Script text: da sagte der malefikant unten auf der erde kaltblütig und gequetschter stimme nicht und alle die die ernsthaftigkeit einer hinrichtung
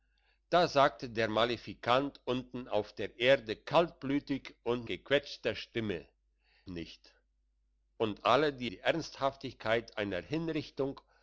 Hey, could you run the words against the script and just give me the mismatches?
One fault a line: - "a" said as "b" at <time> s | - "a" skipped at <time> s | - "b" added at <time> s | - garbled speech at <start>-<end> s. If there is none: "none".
none